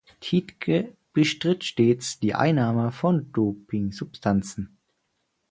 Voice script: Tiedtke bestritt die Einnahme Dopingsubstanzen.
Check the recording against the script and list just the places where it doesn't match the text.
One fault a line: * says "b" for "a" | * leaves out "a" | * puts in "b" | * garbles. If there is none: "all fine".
* puts in "stets"
* puts in "von"